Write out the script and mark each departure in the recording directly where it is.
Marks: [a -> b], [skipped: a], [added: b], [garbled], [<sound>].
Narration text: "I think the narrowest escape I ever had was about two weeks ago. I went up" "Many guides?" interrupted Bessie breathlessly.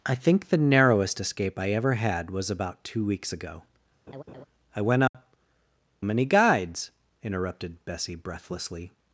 "I think the narrowest escape I ever had was about two weeks ago. [laugh] I went up" [dropout] "Many guides?" interrupted Bessie breathlessly.